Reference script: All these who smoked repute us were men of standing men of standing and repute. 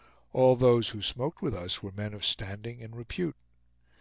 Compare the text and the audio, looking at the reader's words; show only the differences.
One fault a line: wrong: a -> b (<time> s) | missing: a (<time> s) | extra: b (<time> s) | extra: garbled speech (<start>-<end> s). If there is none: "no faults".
wrong: these -> those (0.6 s)
wrong: repute -> with (1.4 s)
missing: men of standing (2.8 s)